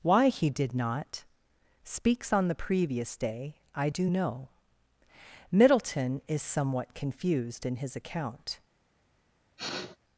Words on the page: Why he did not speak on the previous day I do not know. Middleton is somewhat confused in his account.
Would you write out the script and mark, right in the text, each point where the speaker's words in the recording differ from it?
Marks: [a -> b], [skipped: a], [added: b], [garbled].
Why he did not [speak -> speaks] on the previous day I do [skipped: not] know. Middleton is somewhat confused in his account.